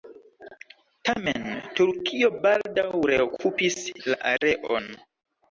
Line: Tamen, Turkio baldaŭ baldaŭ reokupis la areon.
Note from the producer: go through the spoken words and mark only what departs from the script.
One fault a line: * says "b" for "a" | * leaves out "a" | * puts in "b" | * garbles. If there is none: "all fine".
* leaves out "baldaŭ"